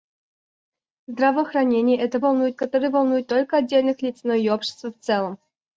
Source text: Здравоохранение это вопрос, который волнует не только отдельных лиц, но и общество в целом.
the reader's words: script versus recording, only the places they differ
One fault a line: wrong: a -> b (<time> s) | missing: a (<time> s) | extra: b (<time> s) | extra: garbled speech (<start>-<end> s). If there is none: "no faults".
wrong: вопрос -> волнует (2.2 s)
missing: не (3.3 s)